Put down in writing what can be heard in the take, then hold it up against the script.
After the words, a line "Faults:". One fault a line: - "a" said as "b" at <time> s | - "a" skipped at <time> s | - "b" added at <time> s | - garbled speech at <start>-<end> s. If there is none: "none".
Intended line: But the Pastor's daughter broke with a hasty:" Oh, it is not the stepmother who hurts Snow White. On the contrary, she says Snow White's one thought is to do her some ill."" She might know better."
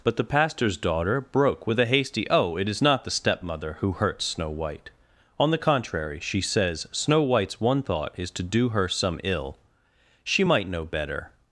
But the Pastor's daughter broke with a hasty:" Oh, it is not the stepmother who hurts Snow White. On the contrary, she says Snow White's one thought is to do her some ill."" She might know better."
Faults:
none